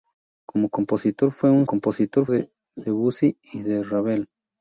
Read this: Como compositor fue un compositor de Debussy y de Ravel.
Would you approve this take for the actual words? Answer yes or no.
yes